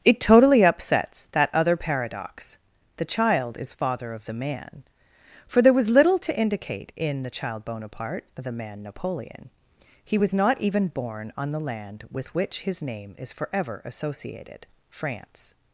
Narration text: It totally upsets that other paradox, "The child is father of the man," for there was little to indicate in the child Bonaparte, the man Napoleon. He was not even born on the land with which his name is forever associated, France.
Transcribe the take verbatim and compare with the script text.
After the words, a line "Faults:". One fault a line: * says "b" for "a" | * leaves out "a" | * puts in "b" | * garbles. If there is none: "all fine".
It totally upsets that other paradox, "The child is father of the man," for there was little to indicate in the child Bonaparte, the man Napoleon. He was not even born on the land with which his name is forever associated, France.
Faults:
all fine